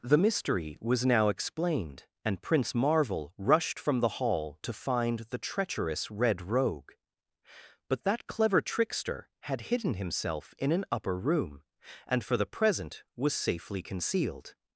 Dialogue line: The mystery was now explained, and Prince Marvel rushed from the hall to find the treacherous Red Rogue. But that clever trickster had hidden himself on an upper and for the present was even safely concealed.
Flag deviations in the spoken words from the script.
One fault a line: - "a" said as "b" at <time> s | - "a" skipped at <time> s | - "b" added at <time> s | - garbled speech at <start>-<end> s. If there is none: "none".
- "on" said as "in" at 10.6 s
- "room" added at 11.2 s
- "even" skipped at 13.3 s